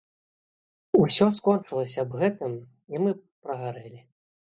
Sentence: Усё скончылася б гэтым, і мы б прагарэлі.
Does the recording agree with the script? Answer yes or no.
yes